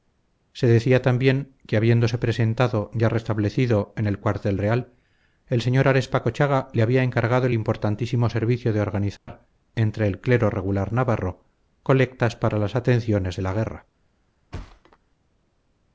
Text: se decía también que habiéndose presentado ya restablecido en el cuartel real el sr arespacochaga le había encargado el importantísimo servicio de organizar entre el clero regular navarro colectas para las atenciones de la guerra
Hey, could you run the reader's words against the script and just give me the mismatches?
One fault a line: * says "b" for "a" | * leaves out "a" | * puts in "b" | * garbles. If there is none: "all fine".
all fine